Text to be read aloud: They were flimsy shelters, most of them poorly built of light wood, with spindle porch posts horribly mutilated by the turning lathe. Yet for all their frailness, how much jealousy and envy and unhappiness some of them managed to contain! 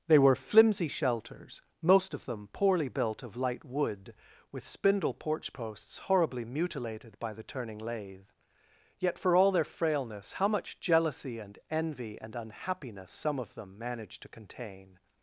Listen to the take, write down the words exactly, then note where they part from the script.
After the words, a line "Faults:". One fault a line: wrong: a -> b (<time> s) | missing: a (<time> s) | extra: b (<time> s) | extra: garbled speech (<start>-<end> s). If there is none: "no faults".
They were flimsy shelters, most of them poorly built of light wood, with spindle porch posts horribly mutilated by the turning lathe. Yet for all their frailness, how much jealousy and envy and unhappiness some of them managed to contain!
Faults:
no faults